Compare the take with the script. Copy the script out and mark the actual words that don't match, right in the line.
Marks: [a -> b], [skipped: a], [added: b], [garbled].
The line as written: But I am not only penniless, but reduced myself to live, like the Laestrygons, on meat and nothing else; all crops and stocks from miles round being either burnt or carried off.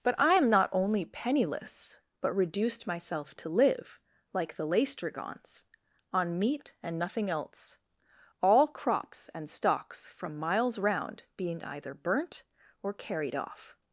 But I am not only penniless, but reduced myself to live, like the Laestrygons, on meat and nothing else; all crops and stocks from miles round being either burnt or carried off.